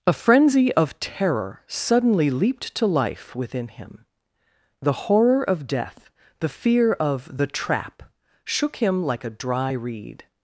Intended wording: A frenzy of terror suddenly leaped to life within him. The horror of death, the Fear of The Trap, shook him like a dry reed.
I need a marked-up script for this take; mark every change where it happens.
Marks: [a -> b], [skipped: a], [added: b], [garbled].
A frenzy of terror suddenly leaped to life within him. The horror of death, the Fear of The Trap, shook him like a dry reed.